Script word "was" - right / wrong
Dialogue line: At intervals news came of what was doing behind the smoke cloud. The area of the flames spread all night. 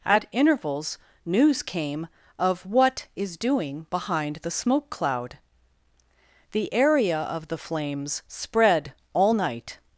wrong